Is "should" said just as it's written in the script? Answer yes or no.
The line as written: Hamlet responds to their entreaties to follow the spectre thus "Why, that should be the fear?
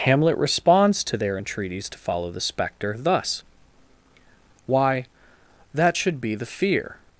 yes